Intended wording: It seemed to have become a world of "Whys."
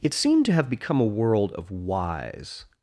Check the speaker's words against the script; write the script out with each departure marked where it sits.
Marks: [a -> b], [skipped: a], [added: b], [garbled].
It seemed to have become a world of "Whys."